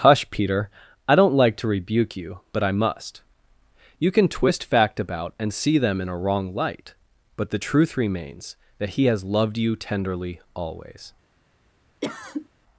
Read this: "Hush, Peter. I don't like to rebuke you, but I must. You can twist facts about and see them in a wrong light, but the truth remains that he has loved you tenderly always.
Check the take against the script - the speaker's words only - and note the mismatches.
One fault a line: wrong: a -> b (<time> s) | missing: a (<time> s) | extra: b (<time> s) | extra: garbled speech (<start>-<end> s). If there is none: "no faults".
wrong: facts -> fact (4.6 s)